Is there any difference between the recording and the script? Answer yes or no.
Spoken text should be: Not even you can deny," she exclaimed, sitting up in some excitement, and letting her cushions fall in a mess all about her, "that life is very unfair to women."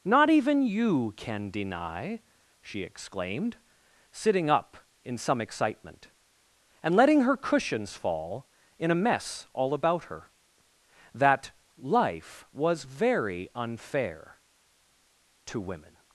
yes